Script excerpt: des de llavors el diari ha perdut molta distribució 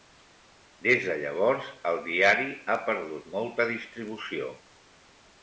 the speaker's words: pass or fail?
pass